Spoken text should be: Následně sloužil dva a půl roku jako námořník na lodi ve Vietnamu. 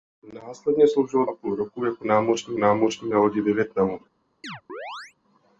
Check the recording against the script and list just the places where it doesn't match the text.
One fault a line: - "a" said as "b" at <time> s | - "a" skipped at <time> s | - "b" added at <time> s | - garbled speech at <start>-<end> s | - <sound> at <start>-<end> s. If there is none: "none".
- "dva" skipped at 1.2 s
- "námořník" added at 2.6 s
- chirp at 4.4-5.1 s